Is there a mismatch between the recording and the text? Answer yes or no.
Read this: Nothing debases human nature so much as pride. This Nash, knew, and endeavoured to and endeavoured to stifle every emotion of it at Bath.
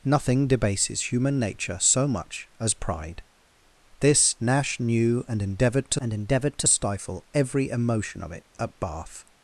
no